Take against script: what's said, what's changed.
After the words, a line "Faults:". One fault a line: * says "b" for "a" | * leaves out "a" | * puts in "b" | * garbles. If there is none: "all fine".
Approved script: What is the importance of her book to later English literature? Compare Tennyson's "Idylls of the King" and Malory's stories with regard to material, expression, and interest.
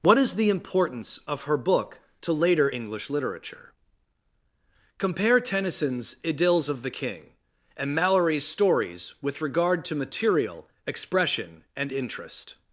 What is the importance of her book to later English literature? Compare Tennyson's "Idylls of the King" and Malory's stories with regard to material, expression, and interest.
Faults:
all fine